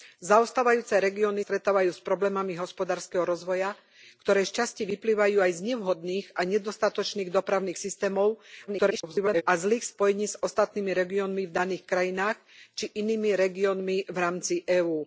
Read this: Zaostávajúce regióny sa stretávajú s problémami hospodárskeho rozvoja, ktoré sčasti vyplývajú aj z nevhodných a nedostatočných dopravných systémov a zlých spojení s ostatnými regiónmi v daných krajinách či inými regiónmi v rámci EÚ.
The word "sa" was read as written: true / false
false